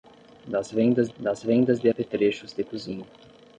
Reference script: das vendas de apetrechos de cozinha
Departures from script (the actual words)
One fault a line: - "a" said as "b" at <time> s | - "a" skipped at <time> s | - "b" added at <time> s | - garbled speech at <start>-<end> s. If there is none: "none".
- "das vendas" added at 1.2 s